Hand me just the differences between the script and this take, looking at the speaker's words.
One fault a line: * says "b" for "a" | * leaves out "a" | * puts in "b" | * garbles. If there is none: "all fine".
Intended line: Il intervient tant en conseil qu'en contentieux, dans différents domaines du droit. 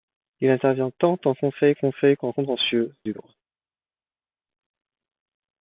* puts in "conseil"
* leaves out "dans différents domaines"